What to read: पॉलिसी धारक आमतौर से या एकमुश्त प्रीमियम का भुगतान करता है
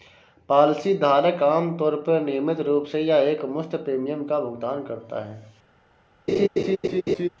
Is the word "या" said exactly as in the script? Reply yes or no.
yes